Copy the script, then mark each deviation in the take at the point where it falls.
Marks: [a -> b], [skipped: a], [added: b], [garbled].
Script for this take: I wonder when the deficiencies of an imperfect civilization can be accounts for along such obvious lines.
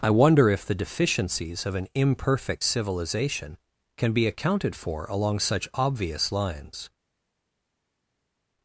I wonder [when -> if] the deficiencies of an imperfect civilization can be [accounts -> accounted] for along such obvious lines.